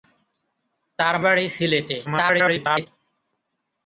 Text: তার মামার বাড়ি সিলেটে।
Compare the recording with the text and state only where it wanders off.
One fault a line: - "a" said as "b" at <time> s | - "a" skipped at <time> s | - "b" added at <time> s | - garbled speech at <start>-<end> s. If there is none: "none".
- "মামার" skipped at 1.1 s
- garbled speech at 2.0-2.9 s